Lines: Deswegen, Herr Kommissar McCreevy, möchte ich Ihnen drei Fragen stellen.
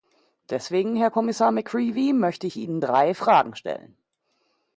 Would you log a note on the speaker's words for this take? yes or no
no